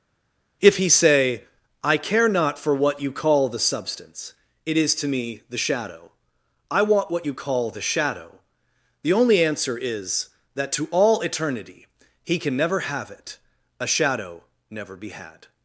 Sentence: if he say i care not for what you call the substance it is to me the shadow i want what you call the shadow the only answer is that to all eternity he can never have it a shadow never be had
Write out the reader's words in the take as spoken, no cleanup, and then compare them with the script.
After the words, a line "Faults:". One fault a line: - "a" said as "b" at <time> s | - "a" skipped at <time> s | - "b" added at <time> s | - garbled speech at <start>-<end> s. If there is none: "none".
if he say i care not for what you call the substance it is to me the shadow i want what you call the shadow the only answer is that to all eternity he can never have it a shadow never be had
Faults:
none